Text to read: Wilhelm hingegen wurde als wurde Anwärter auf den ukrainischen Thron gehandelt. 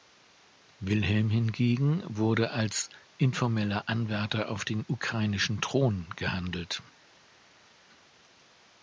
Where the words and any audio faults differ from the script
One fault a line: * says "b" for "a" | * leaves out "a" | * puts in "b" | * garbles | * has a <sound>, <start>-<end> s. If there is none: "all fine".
* says "informeller" for "wurde"